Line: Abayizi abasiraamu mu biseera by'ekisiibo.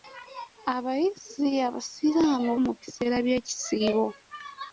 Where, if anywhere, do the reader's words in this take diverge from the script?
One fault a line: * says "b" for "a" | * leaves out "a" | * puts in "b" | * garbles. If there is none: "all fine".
all fine